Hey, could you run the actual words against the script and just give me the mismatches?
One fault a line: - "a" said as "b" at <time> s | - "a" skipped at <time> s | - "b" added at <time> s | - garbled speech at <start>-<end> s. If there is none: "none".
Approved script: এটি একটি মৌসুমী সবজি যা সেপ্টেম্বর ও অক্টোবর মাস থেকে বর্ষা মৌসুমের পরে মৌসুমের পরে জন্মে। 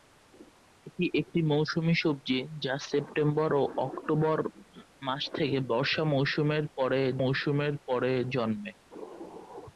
none